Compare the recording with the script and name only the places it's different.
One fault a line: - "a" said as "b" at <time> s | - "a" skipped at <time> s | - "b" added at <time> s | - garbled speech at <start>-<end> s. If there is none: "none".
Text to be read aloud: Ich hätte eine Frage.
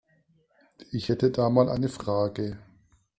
- "da mal" added at 1.3 s